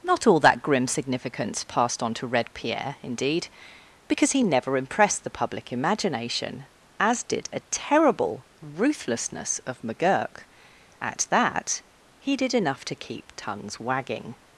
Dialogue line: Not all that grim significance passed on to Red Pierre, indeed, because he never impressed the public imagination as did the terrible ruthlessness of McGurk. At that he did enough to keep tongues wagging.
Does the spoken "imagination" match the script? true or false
true